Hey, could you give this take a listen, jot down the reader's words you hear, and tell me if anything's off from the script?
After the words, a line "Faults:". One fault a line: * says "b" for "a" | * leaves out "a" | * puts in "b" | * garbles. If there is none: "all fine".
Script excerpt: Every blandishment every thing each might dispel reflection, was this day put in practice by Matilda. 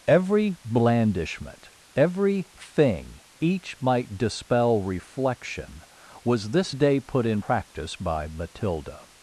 Every blandishment every thing each might dispel reflection, was this day put in practice by Matilda.
Faults:
all fine